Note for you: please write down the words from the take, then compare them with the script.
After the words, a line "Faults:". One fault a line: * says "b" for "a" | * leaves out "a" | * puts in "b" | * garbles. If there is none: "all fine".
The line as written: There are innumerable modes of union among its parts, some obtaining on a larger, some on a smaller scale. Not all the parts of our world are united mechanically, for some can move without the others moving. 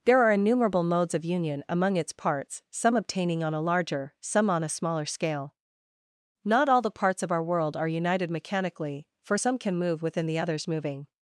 There are innumerable modes of union among its parts, some obtaining on a larger, some on a smaller scale. Not all the parts of our world are united mechanically, for some can move within the others moving.
Faults:
* says "within" for "without"